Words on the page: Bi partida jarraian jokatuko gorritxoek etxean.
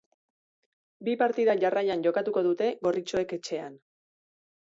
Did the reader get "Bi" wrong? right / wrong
right